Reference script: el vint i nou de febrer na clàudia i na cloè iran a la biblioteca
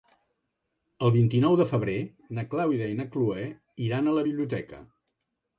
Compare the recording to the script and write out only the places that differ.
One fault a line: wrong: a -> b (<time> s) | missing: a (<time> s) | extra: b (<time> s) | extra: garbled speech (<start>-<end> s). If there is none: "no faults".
no faults